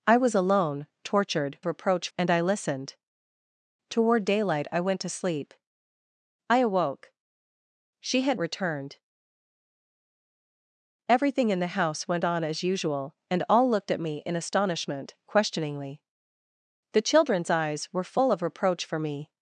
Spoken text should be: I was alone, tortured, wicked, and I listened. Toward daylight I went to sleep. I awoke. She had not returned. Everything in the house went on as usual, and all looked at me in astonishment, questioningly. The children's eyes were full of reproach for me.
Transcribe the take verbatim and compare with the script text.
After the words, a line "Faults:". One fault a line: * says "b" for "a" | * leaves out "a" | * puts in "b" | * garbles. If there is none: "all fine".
I was alone, tortured, reproach, and I listened. Toward daylight I went to sleep. I awoke. She had returned. Everything in the house went on as usual, and all looked at me in astonishment, questioningly. The children's eyes were full of reproach for me.
Faults:
* says "reproach" for "wicked"
* leaves out "not"